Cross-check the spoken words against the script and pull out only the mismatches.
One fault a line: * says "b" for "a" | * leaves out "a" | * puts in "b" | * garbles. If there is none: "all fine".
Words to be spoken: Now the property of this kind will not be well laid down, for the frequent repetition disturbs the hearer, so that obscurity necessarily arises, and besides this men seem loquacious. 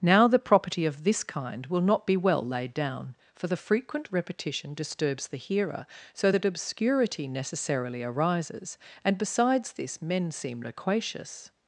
all fine